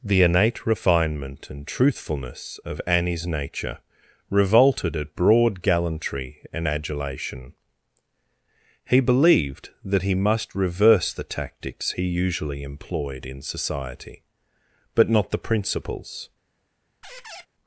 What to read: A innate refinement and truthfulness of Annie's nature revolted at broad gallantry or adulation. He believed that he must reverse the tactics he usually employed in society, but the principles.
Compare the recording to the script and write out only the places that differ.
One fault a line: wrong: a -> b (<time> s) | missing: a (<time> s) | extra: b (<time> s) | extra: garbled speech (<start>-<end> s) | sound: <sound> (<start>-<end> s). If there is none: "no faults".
wrong: A -> The (0.0 s)
wrong: or -> and (6.5 s)
extra: not (15.1 s)
sound: squeak (17.0-17.5 s)